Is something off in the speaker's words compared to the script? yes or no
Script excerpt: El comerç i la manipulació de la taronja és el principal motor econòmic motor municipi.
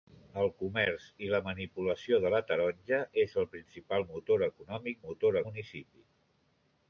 no